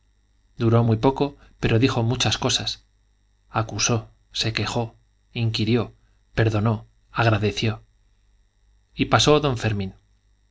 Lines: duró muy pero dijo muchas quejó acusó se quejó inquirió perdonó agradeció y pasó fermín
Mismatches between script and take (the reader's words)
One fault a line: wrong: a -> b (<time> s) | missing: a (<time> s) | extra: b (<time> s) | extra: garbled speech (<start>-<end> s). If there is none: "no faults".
extra: poco (1.0 s)
wrong: quejó -> cosas (2.4 s)
extra: don (9.4 s)